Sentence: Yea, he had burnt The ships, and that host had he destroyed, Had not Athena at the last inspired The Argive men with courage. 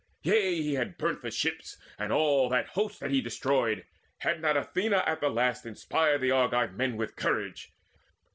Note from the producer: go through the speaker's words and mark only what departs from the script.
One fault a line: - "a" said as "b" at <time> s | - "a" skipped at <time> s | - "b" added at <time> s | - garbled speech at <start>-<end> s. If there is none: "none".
- "all" added at 2.1 s